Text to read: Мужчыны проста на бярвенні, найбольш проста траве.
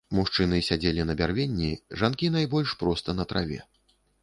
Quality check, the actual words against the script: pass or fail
fail